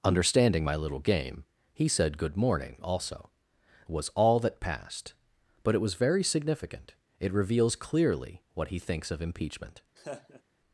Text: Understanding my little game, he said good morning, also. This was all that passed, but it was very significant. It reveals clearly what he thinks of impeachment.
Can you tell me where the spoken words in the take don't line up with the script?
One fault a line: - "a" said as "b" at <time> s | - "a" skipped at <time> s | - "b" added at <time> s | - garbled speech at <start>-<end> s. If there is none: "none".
- "This" skipped at 3.3 s